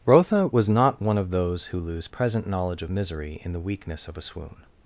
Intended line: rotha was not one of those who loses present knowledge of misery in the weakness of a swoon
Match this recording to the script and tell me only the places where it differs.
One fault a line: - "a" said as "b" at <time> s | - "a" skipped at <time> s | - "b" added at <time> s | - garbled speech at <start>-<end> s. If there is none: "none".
- "loses" said as "lose" at 1.8 s